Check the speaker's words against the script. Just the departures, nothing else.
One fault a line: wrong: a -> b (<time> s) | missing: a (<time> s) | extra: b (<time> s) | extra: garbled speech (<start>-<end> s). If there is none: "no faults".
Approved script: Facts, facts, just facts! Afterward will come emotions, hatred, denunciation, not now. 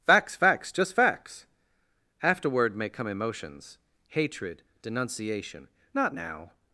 wrong: will -> may (2.8 s)